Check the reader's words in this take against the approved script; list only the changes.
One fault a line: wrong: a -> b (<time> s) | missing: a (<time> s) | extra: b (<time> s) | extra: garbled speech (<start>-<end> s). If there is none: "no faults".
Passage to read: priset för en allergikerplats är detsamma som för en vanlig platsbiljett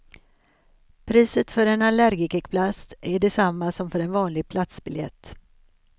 no faults